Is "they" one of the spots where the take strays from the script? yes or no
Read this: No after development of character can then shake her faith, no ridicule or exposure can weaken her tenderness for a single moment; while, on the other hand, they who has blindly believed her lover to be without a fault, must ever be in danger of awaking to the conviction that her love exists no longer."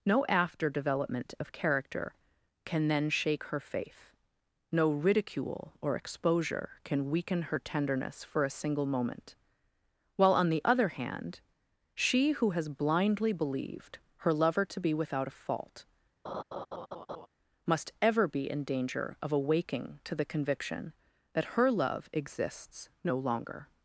yes